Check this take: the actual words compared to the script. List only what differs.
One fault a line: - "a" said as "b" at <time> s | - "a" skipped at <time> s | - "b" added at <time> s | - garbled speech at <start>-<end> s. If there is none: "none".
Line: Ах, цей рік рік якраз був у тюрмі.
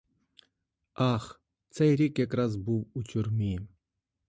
- "рік" skipped at 2.2 s